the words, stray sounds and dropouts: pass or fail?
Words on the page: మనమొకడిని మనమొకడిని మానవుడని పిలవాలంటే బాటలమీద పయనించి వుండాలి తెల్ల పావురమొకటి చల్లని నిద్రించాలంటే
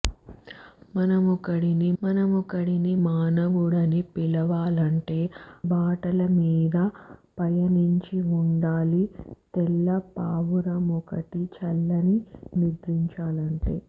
pass